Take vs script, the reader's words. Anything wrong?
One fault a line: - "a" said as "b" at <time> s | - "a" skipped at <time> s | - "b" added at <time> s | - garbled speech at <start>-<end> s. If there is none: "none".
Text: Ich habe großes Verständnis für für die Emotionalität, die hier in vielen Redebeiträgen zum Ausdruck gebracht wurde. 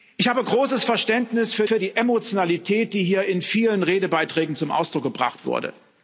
none